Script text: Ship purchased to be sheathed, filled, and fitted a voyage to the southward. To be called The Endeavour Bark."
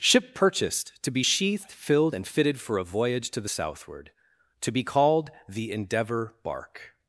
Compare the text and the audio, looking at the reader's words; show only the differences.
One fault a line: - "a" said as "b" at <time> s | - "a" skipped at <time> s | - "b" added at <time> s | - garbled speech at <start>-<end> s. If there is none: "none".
- "for" added at 2.6 s